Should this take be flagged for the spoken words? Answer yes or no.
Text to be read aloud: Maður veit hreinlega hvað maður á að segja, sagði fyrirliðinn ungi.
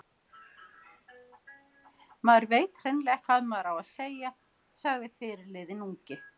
no